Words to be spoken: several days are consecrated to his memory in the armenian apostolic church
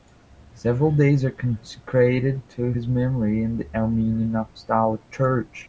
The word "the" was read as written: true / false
true